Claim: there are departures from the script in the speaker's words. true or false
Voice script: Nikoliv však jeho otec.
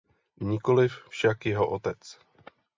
false